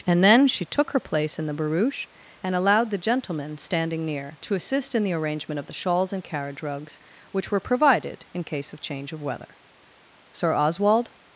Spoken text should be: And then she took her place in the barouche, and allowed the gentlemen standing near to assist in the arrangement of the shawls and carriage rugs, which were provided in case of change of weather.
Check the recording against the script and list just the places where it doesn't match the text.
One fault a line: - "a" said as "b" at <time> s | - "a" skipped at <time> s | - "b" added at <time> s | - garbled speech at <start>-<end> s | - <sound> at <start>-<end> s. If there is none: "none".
- "Sir Oswald" added at 10.3 s